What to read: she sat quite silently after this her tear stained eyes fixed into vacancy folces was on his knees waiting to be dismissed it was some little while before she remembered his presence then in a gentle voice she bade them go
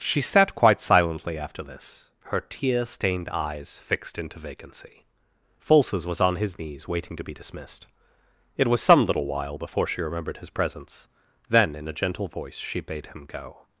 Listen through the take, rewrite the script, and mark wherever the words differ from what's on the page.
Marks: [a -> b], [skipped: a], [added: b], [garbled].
she sat quite silently after this her tear stained eyes fixed into vacancy folces was on his knees waiting to be dismissed it was some little while before she remembered his presence then in a gentle voice she bade [them -> him] go